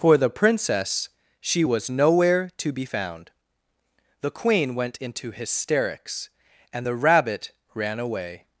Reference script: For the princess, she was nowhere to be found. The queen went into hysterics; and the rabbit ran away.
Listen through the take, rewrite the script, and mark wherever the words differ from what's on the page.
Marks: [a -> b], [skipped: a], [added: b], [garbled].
For the princess, she was nowhere to be found. The queen went into hysterics; and the rabbit ran away.